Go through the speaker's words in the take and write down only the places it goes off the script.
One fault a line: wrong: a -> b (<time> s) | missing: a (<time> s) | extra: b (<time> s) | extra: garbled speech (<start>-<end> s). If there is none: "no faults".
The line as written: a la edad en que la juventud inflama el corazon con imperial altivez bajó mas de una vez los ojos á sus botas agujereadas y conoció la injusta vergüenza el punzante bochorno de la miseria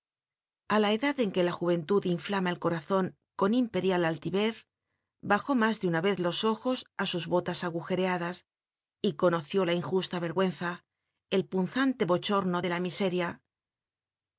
no faults